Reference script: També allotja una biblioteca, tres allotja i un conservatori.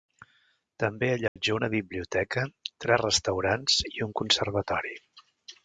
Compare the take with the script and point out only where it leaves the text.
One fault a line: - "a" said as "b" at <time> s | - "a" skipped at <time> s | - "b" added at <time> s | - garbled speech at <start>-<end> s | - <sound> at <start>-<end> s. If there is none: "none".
- dropout at 1.3-1.4 s
- "allotja" said as "restaurants" at 3.1 s